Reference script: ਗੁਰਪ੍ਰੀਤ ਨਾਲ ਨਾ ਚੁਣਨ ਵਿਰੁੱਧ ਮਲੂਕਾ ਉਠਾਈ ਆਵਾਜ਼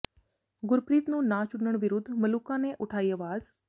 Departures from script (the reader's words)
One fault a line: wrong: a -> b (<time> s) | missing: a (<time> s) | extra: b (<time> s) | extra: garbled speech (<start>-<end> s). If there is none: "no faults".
wrong: ਨਾਲ -> ਨੂੰ (1.1 s)
extra: ਨੇ (2.6 s)